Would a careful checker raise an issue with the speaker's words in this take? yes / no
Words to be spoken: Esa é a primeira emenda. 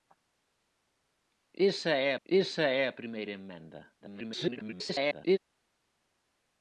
yes